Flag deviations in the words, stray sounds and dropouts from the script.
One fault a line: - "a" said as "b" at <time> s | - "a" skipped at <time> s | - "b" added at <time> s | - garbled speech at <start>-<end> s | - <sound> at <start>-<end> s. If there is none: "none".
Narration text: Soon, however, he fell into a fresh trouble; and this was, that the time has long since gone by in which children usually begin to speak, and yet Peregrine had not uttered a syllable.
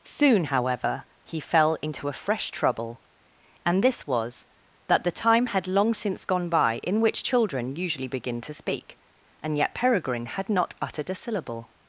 - "has" said as "had" at 5.5 s